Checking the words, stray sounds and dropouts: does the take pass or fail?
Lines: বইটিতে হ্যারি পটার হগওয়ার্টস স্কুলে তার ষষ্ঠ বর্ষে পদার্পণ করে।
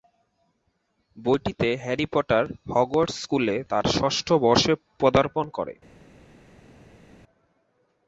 pass